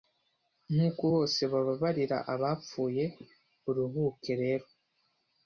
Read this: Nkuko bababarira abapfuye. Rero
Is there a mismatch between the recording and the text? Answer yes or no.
yes